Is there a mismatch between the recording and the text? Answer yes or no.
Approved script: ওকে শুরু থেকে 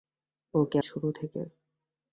no